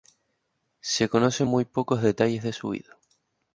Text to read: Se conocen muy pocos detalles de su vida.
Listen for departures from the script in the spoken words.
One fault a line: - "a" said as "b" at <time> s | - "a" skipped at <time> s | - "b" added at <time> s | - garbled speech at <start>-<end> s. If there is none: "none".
none